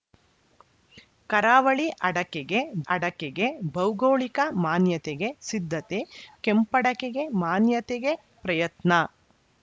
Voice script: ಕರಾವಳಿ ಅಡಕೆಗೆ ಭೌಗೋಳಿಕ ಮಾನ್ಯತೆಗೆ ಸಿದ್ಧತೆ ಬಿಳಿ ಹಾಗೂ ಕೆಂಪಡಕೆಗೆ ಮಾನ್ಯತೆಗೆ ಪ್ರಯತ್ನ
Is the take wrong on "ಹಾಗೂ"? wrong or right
wrong